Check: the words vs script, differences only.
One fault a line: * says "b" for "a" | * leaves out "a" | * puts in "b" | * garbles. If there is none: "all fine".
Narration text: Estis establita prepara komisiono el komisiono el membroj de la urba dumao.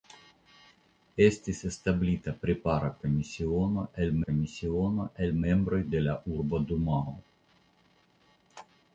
all fine